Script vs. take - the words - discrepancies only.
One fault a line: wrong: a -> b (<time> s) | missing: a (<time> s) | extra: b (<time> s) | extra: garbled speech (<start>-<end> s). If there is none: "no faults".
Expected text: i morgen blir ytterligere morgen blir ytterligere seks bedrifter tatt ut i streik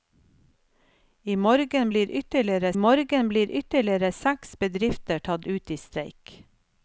no faults